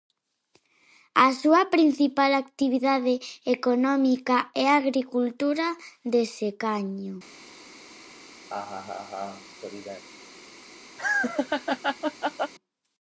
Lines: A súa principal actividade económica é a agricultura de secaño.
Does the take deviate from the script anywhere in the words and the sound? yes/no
yes